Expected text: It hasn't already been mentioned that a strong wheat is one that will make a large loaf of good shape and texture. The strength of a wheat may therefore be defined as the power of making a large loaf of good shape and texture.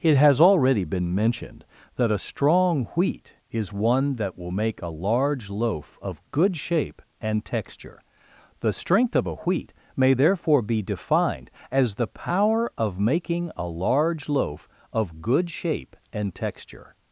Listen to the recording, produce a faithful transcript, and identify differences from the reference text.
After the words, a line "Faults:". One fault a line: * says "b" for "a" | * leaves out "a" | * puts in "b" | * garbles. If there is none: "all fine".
It has already been mentioned that a strong wheat is one that will make a large loaf of good shape and texture. The strength of a wheat may therefore be defined as the power of making a large loaf of good shape and texture.
Faults:
* says "has" for "hasn't"